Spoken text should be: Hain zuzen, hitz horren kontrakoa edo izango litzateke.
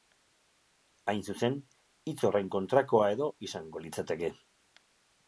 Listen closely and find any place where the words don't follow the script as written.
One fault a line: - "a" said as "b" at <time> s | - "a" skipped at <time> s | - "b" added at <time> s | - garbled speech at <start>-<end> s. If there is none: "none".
none